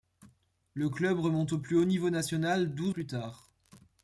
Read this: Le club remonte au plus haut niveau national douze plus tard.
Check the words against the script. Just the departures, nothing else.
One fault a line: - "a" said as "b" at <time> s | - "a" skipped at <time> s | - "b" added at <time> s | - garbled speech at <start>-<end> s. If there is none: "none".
none